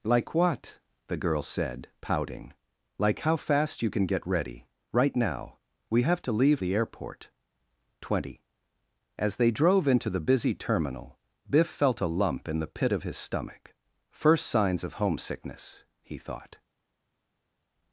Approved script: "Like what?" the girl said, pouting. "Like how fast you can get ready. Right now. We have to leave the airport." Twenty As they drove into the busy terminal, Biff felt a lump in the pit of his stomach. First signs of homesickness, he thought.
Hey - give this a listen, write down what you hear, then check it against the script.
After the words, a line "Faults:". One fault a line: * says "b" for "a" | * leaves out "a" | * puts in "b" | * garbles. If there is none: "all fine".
"Like what?" the girl said, pouting. "Like how fast you can get ready. Right now. We have to leave the airport." Twenty As they drove into the busy terminal, Biff felt a lump in the pit of his stomach. First signs of homesickness, he thought.
Faults:
all fine